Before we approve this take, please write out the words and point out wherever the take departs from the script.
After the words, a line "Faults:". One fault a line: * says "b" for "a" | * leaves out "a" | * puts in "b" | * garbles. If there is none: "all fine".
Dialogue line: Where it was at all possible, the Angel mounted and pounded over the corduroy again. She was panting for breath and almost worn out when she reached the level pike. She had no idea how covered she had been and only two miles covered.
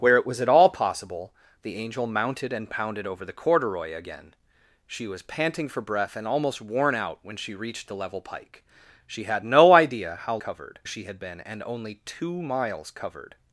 Where it was at all possible, the Angel mounted and pounded over the corduroy again. She was panting for breath and almost worn out when she reached the level pike. She had no idea how covered she had been and only two miles covered.
Faults:
all fine